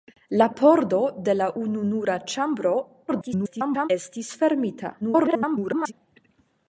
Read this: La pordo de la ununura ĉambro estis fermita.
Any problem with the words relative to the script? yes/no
yes